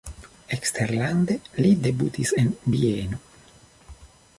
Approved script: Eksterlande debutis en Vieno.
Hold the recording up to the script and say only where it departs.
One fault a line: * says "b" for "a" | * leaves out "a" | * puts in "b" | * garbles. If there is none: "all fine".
* puts in "li"